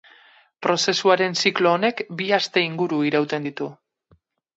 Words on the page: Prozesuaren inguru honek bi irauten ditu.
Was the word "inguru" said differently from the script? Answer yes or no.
yes